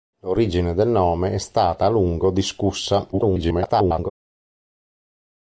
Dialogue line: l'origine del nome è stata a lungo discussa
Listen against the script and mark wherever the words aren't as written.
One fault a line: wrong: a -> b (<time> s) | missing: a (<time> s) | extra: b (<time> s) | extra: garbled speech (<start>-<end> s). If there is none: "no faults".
extra: garbled speech (3.1-4.1 s)